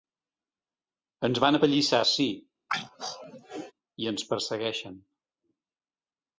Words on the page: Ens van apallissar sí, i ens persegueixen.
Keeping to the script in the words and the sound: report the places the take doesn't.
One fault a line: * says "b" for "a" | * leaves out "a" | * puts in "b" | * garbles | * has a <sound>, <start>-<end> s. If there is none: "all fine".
* has a throat clearing, 2.7-3.7 s